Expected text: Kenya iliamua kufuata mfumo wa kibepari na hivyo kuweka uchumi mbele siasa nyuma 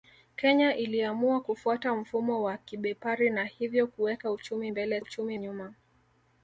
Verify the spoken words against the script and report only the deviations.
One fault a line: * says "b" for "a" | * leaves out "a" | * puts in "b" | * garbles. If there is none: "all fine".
* says "uchumi" for "siasa"